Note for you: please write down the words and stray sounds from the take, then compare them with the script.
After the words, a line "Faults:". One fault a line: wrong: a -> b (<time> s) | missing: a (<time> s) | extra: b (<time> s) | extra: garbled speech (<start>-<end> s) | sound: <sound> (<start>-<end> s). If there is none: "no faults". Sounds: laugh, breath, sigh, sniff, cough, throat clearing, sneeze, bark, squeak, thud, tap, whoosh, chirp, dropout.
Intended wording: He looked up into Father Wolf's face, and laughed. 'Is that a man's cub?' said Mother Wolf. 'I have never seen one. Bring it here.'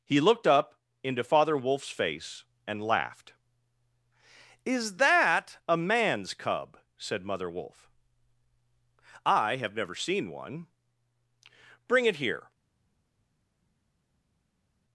He looked up into Father Wolf's face, and laughed. 'Is that a man's cub?' said Mother Wolf. 'I have never seen one. Bring it here.'
Faults:
no faults